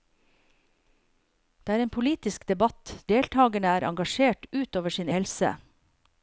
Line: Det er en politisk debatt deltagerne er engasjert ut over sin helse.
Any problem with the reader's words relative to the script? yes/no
no